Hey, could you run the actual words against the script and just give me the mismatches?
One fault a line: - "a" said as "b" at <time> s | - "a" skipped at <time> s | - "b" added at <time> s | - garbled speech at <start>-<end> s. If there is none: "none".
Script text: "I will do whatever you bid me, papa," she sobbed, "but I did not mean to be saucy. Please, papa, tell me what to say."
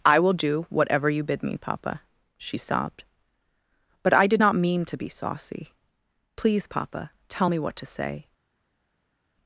none